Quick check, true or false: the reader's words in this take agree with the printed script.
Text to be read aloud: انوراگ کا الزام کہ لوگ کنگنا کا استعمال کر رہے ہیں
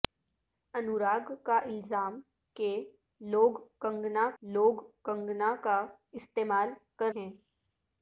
false